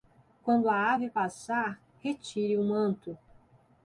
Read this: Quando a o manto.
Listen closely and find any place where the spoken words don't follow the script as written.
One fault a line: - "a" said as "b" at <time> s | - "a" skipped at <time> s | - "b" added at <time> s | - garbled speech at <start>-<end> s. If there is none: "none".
- "ave passar retire" added at 0.9 s